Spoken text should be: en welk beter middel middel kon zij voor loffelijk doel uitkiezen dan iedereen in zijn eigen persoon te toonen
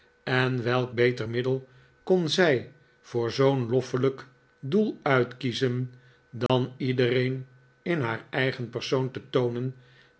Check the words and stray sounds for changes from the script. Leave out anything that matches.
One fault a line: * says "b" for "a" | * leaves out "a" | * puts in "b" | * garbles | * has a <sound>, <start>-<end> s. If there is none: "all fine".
* leaves out "middel"
* puts in "zoo'n"
* has a dropout, 6.5-6.5 s
* says "haar" for "zijn"